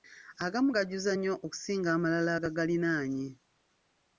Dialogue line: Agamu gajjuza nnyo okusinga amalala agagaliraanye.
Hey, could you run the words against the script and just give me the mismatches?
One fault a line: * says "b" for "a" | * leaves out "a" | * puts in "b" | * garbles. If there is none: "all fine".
all fine